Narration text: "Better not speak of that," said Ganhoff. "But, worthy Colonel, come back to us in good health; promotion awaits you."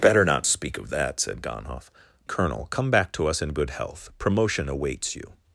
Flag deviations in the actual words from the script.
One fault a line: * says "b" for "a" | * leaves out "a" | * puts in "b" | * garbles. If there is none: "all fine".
* leaves out "But worthy"